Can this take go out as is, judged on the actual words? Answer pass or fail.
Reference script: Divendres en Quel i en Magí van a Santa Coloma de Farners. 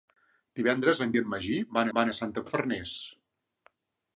fail